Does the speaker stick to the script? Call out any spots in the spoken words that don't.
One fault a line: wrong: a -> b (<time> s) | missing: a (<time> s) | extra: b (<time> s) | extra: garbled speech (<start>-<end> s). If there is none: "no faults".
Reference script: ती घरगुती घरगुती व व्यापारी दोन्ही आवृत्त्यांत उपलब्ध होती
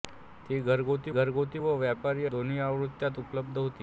no faults